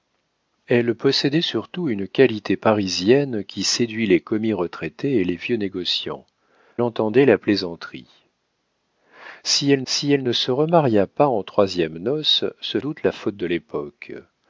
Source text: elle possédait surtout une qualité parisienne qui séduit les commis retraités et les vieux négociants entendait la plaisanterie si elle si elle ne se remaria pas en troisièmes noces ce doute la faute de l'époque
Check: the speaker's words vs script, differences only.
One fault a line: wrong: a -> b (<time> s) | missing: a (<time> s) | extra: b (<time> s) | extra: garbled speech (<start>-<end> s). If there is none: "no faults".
no faults